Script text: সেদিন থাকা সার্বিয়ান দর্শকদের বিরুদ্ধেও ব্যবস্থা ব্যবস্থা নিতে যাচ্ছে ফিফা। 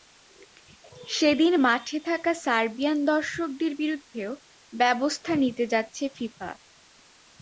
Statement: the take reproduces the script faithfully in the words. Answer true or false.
false